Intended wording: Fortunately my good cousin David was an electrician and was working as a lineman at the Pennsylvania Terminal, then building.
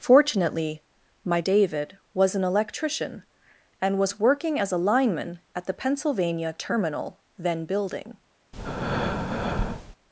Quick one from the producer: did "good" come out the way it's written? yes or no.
no